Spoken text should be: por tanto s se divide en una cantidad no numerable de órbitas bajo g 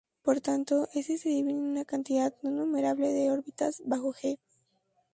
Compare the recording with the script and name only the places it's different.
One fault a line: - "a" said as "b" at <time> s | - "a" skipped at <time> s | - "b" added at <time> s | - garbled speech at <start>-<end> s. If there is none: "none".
none